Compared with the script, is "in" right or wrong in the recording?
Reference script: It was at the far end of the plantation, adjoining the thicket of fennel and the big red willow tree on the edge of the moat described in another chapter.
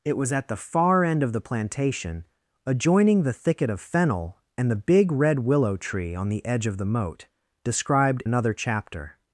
wrong